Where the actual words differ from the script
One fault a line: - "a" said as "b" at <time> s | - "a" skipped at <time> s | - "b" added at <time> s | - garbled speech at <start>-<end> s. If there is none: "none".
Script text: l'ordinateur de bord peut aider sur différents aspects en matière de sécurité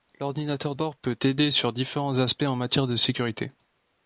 - "de" skipped at 0.7 s